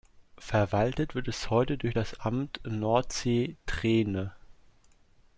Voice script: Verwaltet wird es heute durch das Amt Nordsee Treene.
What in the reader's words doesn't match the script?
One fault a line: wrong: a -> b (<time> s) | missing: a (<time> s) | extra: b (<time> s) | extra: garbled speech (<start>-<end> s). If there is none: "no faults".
no faults